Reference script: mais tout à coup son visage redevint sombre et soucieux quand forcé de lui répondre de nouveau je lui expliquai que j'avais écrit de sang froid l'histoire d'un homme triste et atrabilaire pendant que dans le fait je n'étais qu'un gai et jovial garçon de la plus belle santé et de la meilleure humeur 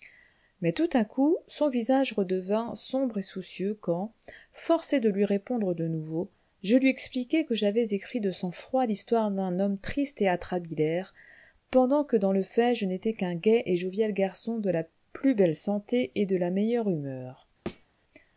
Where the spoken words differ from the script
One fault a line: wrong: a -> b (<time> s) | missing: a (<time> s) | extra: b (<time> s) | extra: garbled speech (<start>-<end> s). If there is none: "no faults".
no faults